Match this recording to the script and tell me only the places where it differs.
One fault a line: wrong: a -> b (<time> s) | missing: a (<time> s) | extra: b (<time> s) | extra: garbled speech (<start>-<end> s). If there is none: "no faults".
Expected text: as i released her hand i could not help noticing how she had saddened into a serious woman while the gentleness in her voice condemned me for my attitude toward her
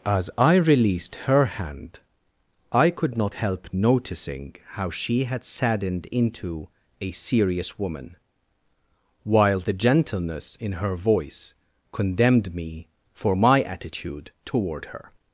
no faults